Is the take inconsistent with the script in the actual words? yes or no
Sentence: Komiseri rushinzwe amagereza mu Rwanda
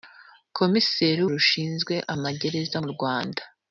no